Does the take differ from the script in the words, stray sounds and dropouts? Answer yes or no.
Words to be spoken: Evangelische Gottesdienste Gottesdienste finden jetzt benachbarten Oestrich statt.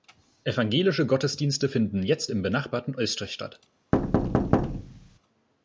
yes